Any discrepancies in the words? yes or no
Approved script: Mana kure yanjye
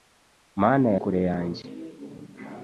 no